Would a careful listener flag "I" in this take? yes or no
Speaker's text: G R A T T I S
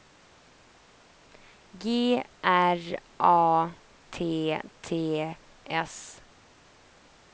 yes